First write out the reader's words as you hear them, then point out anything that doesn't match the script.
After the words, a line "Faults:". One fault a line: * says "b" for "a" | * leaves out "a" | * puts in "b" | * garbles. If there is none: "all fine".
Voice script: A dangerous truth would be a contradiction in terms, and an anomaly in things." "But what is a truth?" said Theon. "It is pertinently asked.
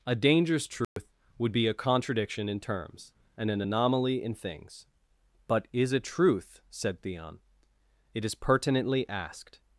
A dangerous truth would be a contradiction in terms, and an anomaly in things." "But is a truth?" said Theon. "It is pertinently asked.
Faults:
* leaves out "what"